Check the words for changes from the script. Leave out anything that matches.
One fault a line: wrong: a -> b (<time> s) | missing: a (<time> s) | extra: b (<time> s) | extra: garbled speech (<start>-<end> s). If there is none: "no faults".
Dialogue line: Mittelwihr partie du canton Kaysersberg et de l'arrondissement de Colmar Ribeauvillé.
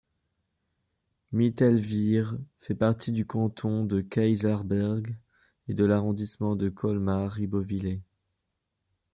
extra: fait (2.6 s)
extra: de (3.9 s)